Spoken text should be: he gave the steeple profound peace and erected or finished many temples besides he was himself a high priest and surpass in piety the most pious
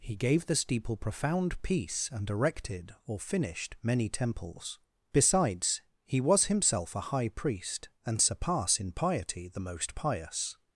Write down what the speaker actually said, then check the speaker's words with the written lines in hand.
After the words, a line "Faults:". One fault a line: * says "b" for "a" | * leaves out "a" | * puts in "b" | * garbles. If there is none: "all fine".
he gave the steeple profound peace and erected or finished many temples besides he was himself a high priest and surpass in piety the most pious
Faults:
all fine